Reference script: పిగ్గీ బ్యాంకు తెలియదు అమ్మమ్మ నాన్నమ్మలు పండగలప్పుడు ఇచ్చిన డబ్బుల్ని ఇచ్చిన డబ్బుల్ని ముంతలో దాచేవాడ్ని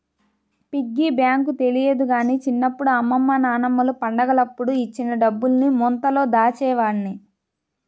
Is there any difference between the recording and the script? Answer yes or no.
yes